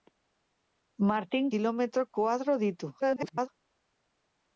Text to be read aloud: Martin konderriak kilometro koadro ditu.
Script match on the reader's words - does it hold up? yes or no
no